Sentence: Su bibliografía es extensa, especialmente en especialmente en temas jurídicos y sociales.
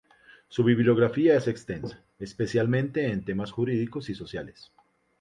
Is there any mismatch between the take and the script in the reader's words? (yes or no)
yes